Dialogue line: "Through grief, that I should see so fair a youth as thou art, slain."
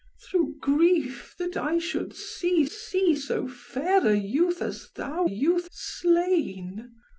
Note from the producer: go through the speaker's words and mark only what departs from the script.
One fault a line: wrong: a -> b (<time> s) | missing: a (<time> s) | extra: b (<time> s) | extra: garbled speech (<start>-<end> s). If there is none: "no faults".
extra: see (2.7 s)
wrong: art -> youth (5.2 s)